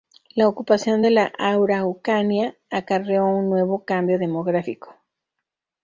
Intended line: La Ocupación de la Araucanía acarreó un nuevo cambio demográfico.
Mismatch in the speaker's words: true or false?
false